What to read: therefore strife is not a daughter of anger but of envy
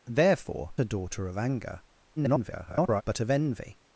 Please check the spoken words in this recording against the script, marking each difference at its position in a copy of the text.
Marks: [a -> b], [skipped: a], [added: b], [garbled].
therefore [skipped: strife is not] a daughter of anger [garbled] but of envy